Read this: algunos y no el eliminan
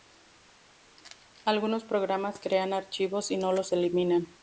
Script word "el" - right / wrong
wrong